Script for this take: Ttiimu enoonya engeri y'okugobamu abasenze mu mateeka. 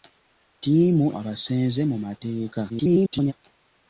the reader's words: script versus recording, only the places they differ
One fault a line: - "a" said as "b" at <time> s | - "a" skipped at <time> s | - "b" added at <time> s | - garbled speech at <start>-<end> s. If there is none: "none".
- "enoonya engeri y'okugobamu" skipped at 1.1 s
- garbled speech at 2.7-3.3 s